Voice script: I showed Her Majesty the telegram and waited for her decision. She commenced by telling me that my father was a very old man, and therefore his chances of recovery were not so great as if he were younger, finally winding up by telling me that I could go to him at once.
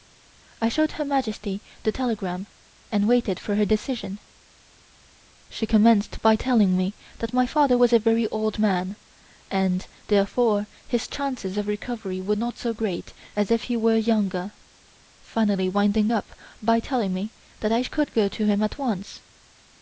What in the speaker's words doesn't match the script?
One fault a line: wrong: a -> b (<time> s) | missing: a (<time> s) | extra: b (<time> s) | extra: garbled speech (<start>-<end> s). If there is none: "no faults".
no faults